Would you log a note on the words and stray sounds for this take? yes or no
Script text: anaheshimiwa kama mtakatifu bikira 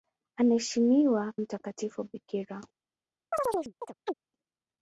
yes